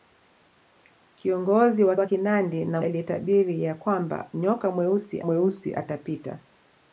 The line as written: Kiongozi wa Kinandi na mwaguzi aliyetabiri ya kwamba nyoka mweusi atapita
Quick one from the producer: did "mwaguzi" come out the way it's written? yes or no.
no